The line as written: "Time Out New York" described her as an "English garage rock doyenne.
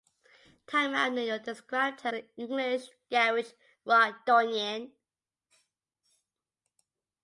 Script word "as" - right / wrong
wrong